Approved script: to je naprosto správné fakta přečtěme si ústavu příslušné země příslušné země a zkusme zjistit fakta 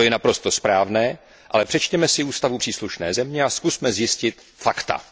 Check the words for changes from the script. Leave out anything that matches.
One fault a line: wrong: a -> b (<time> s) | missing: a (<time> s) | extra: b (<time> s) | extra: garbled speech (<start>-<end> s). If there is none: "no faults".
wrong: fakta -> ale (1.5 s)
missing: příslušné země (3.4 s)